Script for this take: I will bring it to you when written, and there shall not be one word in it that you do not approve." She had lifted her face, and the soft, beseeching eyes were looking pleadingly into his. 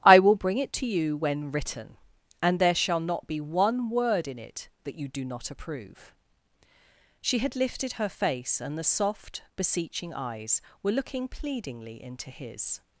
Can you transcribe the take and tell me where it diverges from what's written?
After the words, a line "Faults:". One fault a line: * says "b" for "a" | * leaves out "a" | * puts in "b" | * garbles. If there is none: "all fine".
I will bring it to you when written, and there shall not be one word in it that you do not approve." She had lifted her face, and the soft, beseeching eyes were looking pleadingly into his.
Faults:
all fine